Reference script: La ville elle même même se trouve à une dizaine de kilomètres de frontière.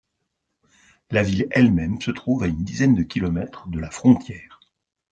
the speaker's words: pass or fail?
fail